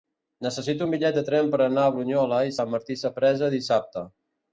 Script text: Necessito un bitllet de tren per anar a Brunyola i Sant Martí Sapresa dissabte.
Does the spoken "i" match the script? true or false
true